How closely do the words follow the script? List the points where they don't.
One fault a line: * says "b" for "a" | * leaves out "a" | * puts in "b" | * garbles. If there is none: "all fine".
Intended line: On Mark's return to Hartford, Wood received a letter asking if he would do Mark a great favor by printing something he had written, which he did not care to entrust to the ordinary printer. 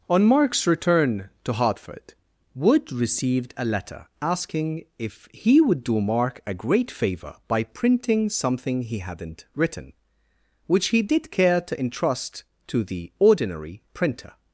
* says "hadn't" for "had"
* leaves out "not"